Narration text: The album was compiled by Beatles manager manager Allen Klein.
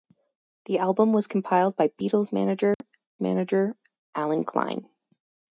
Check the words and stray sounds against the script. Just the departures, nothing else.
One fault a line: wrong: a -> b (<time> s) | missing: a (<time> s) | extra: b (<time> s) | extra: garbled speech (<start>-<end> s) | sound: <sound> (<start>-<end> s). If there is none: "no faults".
sound: dropout (2.7-2.8 s)